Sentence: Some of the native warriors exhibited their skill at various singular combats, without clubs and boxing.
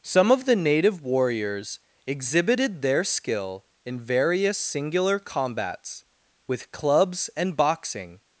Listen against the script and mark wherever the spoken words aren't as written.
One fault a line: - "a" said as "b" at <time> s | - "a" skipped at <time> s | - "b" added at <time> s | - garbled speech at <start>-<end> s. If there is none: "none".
- "at" said as "in" at 3.9 s
- "without" said as "with" at 6.5 s